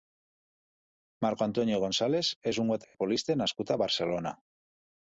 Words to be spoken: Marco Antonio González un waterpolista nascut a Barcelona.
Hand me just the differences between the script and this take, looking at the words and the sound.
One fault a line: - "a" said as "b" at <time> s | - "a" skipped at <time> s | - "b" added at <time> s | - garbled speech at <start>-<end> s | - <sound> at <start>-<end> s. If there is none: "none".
- "és" added at 2.5 s
- dropout at 2.8-2.9 s